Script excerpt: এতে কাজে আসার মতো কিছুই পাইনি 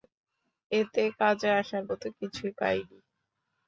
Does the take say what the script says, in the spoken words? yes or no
yes